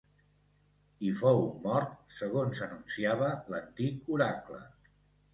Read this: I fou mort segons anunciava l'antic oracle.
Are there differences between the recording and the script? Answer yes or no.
no